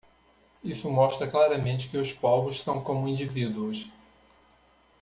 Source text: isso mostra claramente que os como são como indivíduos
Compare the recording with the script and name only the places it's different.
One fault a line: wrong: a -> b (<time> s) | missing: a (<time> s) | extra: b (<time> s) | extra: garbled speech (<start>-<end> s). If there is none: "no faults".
wrong: como -> povos (2.1 s)